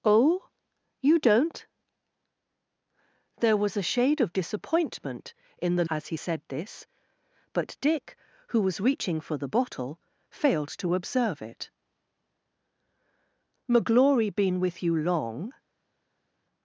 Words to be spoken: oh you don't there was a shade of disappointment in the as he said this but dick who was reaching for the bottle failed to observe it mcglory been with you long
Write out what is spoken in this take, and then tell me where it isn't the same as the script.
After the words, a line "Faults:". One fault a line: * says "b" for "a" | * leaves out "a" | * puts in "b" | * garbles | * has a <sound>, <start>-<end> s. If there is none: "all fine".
oh you don't there was a shade of disappointment in the as he said this but dick who was reaching for the bottle failed to observe it mcglory been with you long
Faults:
all fine